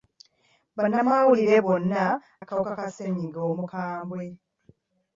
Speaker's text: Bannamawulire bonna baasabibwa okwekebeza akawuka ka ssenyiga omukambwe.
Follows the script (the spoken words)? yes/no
no